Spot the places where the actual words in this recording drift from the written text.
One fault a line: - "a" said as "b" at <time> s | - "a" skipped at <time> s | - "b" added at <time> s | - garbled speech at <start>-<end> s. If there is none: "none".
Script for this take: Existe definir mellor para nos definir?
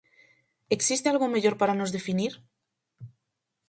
- "definir" said as "algo" at 1.1 s